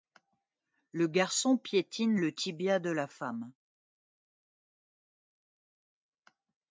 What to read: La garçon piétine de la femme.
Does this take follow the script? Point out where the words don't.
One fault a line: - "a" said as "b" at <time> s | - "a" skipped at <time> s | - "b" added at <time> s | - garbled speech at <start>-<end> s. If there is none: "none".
- "La" said as "Le" at 0.9 s
- "le tibia" added at 2.1 s